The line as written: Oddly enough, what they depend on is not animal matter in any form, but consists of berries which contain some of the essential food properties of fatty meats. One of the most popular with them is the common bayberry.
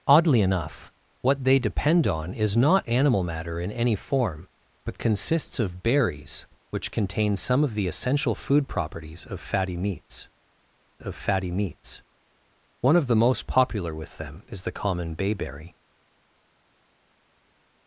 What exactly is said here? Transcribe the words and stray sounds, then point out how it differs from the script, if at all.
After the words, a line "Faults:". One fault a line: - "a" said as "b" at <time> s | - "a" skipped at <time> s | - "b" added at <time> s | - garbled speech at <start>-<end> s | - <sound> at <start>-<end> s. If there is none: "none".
Oddly enough, what they depend on is not animal matter in any form, but consists of berries which contain some of the essential food properties of fatty meats of fatty meats. One of the most popular with them is the common bayberry.
Faults:
- "of fatty meats" added at 11.0 s